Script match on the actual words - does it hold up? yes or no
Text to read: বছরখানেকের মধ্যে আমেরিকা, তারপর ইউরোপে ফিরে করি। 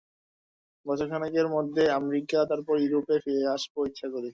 no